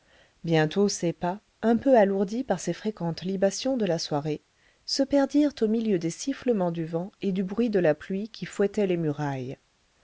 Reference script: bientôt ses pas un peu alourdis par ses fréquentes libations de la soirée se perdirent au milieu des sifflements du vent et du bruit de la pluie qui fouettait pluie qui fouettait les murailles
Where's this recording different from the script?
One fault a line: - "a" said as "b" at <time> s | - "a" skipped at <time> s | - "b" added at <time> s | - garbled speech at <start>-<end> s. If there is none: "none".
- "pluie qui fouettait" skipped at 8.9 s